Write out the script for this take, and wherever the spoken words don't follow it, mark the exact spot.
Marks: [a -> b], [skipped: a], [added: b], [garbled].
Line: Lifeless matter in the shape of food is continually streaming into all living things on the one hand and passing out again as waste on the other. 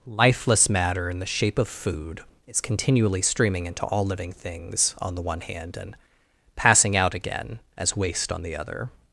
Lifeless matter in the shape of food is continually streaming into all living things on the one hand and passing out again as waste on the other.